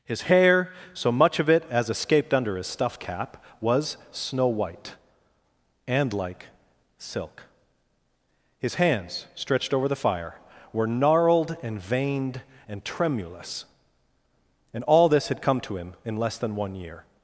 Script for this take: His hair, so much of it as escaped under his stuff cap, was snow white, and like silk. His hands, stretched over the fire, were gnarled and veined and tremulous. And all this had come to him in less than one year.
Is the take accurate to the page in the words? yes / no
yes